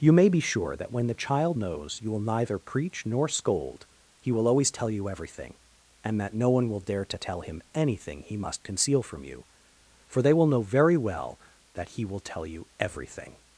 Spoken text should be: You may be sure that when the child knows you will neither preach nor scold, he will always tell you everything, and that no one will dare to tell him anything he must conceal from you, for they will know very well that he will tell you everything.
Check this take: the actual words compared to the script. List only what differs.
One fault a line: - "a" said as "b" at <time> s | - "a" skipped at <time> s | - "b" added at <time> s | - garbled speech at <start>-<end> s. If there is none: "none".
none